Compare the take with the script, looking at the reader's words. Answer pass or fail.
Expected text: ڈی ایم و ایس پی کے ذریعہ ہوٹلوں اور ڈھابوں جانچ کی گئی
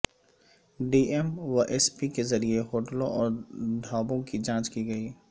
fail